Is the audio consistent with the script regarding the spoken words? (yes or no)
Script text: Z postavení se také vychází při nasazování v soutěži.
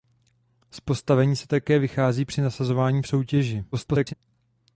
no